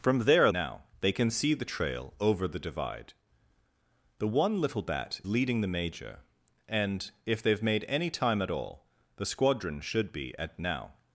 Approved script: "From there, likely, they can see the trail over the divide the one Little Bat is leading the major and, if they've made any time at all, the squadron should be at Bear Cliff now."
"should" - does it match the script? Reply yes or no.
yes